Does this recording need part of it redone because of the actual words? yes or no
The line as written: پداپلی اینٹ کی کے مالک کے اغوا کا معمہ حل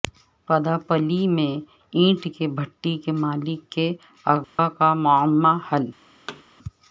yes